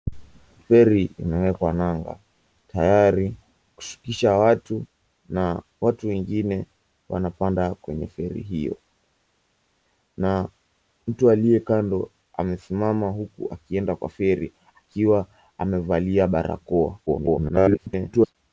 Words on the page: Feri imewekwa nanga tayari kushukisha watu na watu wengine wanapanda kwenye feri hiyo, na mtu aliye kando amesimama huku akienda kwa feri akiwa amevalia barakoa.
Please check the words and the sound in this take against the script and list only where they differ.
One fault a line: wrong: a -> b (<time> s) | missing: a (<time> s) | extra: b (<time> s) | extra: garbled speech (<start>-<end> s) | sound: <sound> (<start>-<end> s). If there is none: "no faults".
extra: garbled speech (17.1-18.4 s)